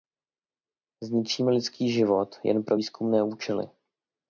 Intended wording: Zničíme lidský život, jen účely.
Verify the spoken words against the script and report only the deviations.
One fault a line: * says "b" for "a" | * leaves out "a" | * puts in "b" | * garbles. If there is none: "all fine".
* puts in "pro výzkumné"